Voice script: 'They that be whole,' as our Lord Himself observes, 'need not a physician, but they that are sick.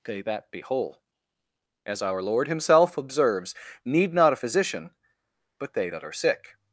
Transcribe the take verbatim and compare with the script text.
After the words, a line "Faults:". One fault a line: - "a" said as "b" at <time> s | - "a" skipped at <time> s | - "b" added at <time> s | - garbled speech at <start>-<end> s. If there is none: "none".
'They that be whole,' as our Lord Himself observes, 'need not a physician, but they that are sick.
Faults:
none